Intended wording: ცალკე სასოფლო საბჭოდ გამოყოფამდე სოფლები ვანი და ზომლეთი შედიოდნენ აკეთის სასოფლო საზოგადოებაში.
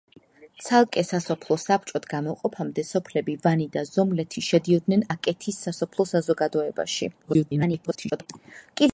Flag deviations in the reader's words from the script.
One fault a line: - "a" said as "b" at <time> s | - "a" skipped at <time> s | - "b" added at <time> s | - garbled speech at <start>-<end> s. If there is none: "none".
- garbled speech at 7.2-8.3 s